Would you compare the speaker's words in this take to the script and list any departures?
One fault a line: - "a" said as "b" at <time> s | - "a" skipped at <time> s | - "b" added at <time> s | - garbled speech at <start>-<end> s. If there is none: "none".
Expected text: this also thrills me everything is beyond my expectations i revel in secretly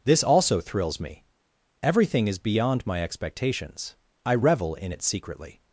- "it" added at 4.9 s